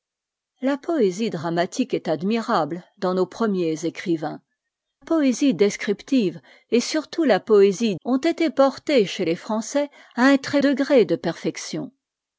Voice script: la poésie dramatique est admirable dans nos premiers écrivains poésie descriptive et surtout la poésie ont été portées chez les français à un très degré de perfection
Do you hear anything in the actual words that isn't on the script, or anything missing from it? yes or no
no